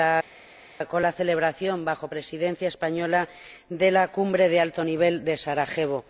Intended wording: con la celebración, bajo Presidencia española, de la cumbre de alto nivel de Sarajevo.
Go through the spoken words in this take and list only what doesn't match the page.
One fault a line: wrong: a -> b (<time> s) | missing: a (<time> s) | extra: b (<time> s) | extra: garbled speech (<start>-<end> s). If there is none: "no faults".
no faults